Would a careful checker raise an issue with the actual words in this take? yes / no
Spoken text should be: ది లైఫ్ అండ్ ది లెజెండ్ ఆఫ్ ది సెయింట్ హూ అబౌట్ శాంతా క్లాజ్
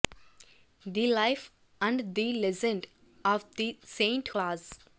yes